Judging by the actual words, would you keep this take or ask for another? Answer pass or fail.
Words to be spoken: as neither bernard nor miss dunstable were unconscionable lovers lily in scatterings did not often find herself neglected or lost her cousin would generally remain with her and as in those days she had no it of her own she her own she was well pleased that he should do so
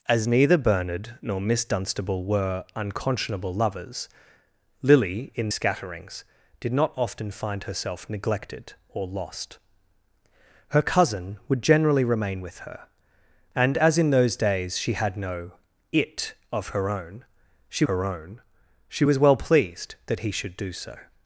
pass